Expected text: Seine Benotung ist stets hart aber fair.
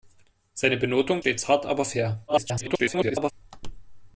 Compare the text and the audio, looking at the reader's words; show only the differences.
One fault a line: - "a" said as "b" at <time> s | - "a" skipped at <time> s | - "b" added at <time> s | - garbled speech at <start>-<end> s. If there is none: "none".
- "ist" skipped at 1.2 s
- garbled speech at 2.3-3.3 s